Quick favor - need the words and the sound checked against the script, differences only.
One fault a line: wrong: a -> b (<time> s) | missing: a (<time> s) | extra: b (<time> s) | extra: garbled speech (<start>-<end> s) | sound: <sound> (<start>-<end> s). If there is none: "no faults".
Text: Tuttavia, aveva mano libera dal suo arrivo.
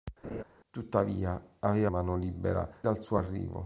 sound: laugh (0.2-0.4 s)